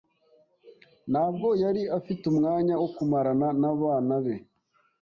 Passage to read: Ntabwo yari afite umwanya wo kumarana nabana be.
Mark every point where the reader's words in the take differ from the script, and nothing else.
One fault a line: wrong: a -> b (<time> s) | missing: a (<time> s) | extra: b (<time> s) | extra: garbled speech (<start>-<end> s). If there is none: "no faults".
no faults